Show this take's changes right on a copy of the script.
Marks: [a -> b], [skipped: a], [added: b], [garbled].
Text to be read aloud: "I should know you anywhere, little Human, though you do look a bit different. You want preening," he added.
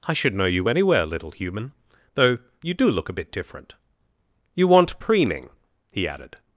"I should know you anywhere, little Human, though you do look a bit different. You want preening," he added.